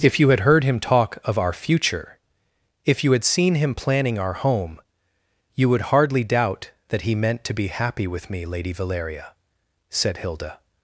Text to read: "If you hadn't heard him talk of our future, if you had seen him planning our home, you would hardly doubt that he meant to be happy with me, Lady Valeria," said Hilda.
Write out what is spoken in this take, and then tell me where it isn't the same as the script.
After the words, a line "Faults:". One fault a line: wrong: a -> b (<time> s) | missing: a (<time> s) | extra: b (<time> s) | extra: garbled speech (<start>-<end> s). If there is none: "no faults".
"If you had heard him talk of our future, if you had seen him planning our home, you would hardly doubt that he meant to be happy with me, Lady Valeria," said Hilda.
Faults:
wrong: hadn't -> had (0.3 s)